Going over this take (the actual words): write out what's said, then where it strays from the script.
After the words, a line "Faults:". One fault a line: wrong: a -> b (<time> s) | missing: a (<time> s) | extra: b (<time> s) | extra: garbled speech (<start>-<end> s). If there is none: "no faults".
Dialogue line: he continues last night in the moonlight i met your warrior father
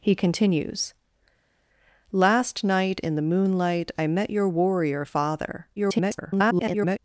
he continues last night in the moonlight i met your warrior father [garbled]
Faults:
extra: garbled speech (5.8-7.0 s)